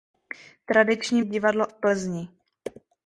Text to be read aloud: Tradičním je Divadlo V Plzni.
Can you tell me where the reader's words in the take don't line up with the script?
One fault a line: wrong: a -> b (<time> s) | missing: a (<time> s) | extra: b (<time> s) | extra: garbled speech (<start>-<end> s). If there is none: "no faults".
no faults